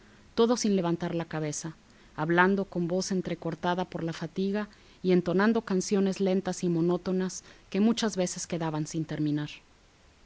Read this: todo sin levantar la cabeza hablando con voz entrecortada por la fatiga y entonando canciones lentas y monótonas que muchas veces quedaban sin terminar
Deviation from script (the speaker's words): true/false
false